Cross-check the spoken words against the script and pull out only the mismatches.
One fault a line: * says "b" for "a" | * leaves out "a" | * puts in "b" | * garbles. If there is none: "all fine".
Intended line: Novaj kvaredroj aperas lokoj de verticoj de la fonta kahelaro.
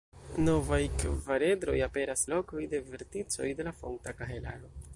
all fine